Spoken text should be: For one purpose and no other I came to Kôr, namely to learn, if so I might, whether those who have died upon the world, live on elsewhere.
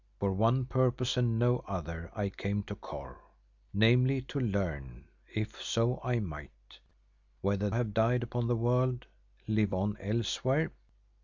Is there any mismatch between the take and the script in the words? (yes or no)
yes